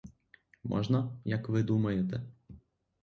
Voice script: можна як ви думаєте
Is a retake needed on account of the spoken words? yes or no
no